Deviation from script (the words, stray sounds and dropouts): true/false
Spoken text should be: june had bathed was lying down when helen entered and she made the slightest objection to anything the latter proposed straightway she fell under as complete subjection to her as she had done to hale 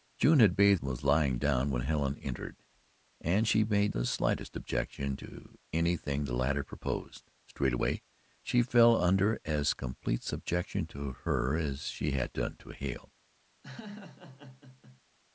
true